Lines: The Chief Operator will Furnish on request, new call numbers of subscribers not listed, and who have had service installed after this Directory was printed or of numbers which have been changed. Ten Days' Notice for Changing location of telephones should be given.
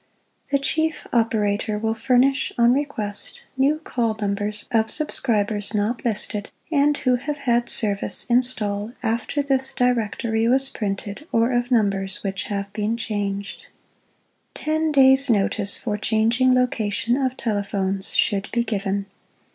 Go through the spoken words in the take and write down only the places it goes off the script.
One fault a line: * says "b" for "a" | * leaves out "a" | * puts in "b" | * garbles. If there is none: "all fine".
all fine